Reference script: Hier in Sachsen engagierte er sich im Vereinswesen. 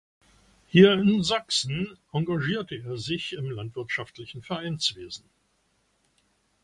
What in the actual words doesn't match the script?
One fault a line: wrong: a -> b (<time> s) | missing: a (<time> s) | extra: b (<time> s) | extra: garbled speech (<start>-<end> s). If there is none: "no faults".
extra: landwirtschaftlichen (3.5 s)